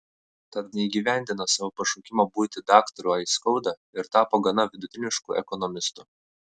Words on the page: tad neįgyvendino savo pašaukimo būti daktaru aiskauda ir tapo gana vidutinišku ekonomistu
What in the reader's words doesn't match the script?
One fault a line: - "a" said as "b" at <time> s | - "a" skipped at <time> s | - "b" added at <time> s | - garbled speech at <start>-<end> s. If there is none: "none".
none